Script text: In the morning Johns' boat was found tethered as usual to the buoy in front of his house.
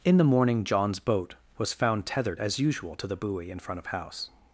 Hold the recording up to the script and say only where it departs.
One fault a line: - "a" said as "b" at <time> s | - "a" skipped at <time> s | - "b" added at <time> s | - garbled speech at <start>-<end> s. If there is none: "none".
- "his" skipped at 3.9 s